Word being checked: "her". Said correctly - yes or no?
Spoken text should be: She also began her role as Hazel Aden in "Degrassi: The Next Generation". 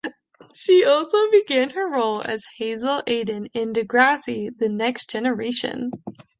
yes